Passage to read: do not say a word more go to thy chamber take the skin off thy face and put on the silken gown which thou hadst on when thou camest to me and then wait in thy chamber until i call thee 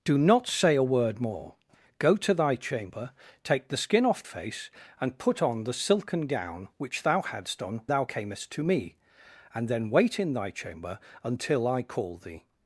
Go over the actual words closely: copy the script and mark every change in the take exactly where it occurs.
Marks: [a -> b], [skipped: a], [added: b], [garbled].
do not say a word more go to thy chamber take the skin off [skipped: thy] face and put on the silken gown which thou hadst on [skipped: when] thou camest to me and then wait in thy chamber until i call thee